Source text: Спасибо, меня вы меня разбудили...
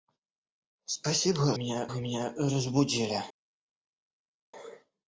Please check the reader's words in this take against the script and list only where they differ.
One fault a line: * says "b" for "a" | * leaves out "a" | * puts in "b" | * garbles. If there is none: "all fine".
all fine